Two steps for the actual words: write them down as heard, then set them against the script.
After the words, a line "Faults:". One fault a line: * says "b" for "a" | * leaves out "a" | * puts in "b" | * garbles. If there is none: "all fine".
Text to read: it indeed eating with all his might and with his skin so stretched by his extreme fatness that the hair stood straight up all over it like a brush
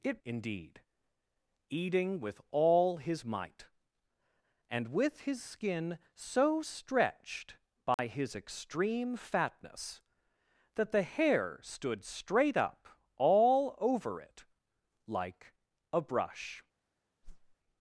it indeed eating with all his might and with his skin so stretched by his extreme fatness that the hair stood straight up all over it like a brush
Faults:
all fine